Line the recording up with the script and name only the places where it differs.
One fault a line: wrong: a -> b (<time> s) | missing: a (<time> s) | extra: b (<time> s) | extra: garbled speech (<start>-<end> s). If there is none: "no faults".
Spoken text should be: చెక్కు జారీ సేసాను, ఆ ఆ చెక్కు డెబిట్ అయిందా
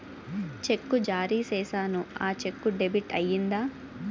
missing: ఆ (2.3 s)